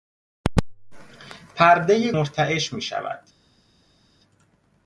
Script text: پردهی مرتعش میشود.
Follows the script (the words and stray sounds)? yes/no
yes